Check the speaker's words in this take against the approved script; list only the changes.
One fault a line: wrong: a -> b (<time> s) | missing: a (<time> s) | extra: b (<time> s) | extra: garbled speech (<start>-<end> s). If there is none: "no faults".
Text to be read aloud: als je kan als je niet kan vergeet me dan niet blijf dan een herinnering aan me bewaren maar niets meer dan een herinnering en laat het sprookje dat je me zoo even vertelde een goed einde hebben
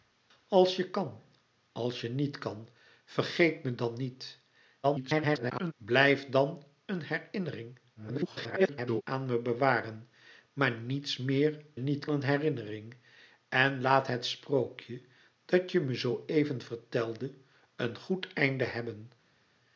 extra: garbled speech (4.8-5.7 s)
extra: garbled speech (8.0-9.0 s)
wrong: dan -> niet (11.8 s)